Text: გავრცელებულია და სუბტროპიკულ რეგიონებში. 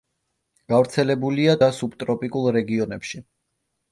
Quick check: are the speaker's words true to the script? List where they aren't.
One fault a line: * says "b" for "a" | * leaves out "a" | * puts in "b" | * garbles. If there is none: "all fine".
all fine